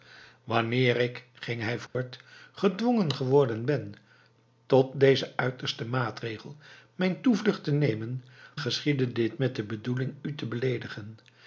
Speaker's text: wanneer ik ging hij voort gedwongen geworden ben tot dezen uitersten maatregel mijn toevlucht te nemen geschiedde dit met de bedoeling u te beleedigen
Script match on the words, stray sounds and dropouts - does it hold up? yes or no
no